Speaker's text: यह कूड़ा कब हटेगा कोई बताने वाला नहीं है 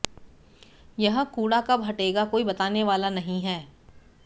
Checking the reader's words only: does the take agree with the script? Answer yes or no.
yes